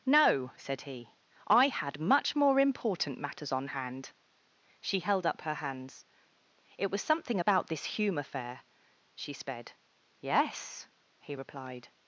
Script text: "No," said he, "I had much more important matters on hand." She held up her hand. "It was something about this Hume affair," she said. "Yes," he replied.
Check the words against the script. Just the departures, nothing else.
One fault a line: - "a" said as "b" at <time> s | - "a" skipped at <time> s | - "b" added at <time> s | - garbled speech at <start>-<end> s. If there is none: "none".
- "hand" said as "hands" at 5.5 s
- "said" said as "sped" at 9.3 s